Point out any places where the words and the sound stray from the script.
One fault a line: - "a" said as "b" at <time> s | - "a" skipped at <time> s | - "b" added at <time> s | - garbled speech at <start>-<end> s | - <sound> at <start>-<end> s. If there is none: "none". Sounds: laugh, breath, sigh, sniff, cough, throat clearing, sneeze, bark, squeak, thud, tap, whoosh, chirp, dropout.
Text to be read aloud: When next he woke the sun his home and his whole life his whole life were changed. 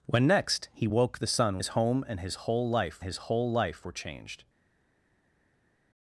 none